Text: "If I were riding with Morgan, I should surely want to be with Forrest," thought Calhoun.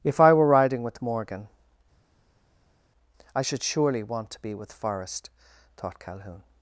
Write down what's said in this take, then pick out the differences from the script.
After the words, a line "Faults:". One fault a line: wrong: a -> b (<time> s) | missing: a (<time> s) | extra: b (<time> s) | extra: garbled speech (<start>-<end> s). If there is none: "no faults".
"If I were riding with Morgan, I should surely want to be with Forrest," thought Calhoun.
Faults:
no faults